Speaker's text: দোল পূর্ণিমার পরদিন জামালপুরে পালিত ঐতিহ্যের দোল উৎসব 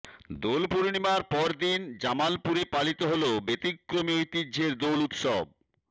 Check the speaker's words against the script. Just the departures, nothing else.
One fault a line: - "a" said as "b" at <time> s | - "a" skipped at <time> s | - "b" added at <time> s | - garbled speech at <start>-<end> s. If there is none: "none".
- "হল ব্যতিক্রমী" added at 3.1 s